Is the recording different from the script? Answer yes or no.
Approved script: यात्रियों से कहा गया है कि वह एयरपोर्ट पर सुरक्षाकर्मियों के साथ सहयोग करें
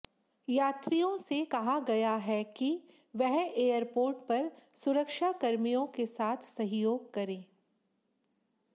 no